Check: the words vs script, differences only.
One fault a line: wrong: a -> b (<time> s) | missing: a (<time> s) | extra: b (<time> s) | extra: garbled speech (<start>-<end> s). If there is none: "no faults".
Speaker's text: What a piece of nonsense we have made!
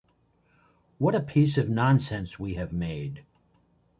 no faults